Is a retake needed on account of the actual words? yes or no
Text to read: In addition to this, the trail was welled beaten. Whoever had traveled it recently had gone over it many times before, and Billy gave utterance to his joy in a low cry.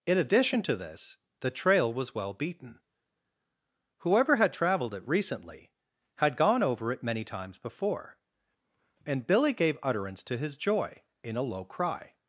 yes